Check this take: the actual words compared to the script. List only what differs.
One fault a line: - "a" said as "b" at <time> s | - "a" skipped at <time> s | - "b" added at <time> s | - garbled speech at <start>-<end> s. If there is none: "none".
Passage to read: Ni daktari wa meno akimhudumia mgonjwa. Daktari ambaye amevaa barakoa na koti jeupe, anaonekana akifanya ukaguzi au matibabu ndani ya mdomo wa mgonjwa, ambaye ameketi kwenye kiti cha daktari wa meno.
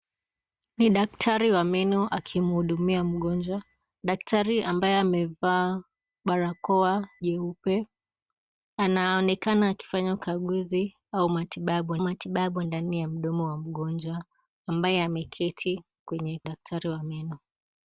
- "na koti" skipped at 7.1 s
- "matibabu" added at 12.0 s
- "kiti cha" skipped at 16.4 s